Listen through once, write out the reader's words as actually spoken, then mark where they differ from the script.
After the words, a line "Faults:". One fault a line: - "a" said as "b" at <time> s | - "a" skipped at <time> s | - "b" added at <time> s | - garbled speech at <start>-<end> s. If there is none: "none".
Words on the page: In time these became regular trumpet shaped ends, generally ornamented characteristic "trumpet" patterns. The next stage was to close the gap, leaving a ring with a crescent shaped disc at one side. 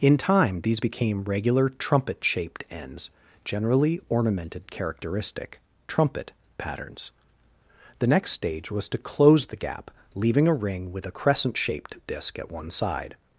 In time these became regular trumpet shaped ends, generally ornamented characteristic "trumpet" patterns. The next stage was to close the gap, leaving a ring with a crescent shaped disc at one side.
Faults:
none